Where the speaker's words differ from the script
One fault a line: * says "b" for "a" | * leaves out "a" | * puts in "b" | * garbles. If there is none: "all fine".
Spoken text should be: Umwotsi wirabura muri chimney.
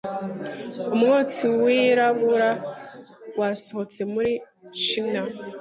* puts in "wasohotse"